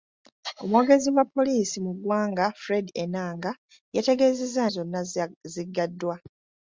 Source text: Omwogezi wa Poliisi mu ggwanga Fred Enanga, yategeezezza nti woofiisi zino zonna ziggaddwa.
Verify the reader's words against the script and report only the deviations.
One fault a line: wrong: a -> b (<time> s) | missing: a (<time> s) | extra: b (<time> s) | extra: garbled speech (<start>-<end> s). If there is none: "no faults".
missing: nti woofiisi zino (4.6 s)